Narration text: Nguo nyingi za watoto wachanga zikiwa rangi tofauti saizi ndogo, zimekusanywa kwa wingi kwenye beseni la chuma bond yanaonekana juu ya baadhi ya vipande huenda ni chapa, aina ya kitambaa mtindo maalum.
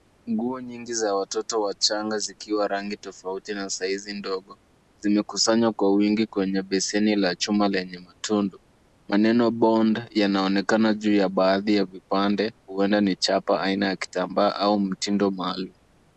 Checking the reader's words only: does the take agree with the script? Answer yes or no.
no